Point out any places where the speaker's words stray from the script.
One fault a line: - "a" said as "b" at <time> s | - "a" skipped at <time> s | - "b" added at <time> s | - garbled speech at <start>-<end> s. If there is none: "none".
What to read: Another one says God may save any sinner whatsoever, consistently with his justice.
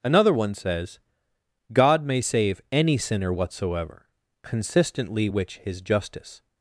- "with" said as "which" at 5.3 s